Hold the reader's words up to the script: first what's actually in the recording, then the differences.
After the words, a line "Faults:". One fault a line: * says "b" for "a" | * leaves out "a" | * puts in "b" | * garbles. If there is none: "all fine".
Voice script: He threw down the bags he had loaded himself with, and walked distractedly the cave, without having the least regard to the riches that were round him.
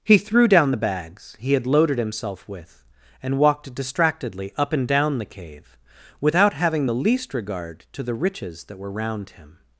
He threw down the bags he had loaded himself with, and walked distractedly up and down the cave, without having the least regard to the riches that were round him.
Faults:
* puts in "up and down"